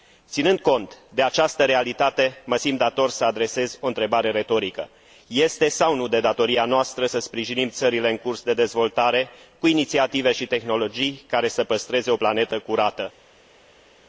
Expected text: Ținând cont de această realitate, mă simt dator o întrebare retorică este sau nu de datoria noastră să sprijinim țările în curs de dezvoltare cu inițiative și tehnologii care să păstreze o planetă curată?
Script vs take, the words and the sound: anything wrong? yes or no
yes